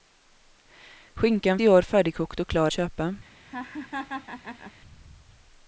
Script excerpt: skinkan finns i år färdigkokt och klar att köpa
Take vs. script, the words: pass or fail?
fail